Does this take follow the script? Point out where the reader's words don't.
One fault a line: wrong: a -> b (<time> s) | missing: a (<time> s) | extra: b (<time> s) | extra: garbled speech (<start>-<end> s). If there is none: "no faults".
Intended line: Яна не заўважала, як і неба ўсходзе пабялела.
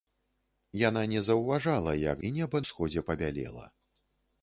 no faults